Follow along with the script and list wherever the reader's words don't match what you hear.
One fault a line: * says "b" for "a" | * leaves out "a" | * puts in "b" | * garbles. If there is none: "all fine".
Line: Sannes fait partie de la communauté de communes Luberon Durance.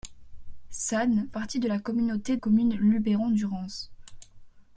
* leaves out "fait"
* leaves out "de"